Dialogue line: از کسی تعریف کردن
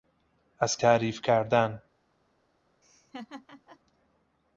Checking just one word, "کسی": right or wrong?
wrong